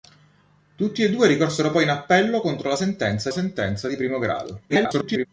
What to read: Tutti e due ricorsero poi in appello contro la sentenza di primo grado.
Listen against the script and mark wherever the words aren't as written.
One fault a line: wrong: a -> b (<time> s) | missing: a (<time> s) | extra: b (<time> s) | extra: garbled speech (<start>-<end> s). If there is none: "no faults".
extra: sentenza (3.3 s)
extra: garbled speech (4.7-5.3 s)